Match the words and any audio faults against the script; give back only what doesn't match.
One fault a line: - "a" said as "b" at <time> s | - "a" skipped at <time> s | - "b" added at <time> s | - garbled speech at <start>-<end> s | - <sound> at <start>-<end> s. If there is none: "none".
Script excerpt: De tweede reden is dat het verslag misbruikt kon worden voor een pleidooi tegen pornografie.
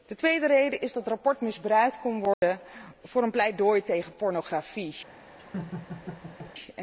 - "dat" skipped at 0.9 s
- dropout at 2.3-2.4 s
- laugh at 5.4-6.5 s